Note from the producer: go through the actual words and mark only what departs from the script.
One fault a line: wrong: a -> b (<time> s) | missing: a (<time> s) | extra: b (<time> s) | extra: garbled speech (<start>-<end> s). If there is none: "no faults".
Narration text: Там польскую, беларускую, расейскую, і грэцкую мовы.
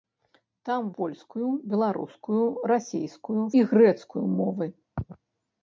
no faults